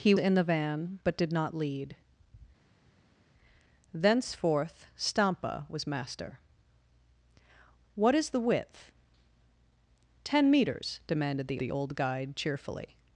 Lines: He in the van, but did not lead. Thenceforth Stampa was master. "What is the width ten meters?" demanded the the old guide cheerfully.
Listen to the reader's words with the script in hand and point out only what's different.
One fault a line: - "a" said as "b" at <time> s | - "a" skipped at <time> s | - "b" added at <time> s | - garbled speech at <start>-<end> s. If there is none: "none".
none